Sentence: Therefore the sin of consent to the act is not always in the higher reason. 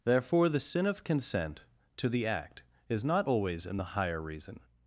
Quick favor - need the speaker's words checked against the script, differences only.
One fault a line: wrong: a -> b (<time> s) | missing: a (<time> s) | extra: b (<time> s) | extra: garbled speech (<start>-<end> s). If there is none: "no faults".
no faults